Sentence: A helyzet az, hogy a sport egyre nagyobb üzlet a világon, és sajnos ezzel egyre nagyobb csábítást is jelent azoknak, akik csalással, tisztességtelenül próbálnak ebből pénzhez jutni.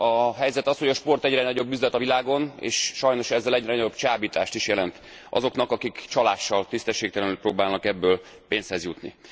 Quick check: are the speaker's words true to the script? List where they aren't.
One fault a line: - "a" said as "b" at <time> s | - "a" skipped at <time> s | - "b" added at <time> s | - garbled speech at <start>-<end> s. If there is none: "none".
none